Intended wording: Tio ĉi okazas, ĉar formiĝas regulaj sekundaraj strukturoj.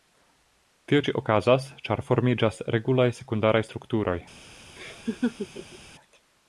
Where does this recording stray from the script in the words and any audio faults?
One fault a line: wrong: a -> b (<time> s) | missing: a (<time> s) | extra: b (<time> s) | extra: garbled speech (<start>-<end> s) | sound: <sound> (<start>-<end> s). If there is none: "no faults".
sound: laugh (4.8-5.8 s)